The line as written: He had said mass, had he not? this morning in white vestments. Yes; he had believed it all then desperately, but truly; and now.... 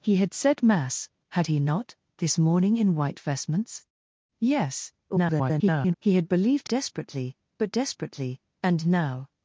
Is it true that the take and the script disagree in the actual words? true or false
true